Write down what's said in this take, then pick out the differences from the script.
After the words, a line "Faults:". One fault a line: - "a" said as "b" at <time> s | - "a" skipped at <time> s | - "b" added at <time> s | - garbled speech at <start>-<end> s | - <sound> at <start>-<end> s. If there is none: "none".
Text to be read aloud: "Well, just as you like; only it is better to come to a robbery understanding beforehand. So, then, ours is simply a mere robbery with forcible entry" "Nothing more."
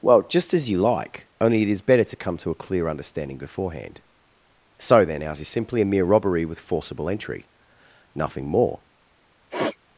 "Well, just as you like; only it is better to come to a clear understanding beforehand. So, then, ours is simply a mere robbery with forcible entry" "Nothing more."
Faults:
- "robbery" said as "clear" at 2.5 s
- sniff at 9.5-9.8 s